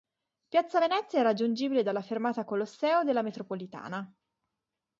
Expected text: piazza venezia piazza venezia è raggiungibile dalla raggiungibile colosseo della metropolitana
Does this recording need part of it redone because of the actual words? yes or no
yes